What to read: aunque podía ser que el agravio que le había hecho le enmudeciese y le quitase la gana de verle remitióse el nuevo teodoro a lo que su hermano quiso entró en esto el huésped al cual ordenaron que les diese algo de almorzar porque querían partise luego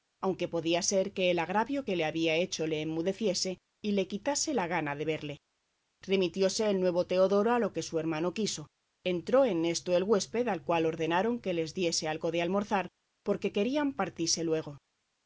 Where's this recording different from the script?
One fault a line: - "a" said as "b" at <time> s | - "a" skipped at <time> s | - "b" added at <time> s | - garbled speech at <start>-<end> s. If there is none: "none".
none